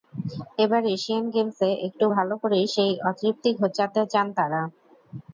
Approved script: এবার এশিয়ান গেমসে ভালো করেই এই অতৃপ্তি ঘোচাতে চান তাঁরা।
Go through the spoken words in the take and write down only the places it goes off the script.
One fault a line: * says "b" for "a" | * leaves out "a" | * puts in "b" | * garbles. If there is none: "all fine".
* puts in "একটু"
* says "সেই" for "এই"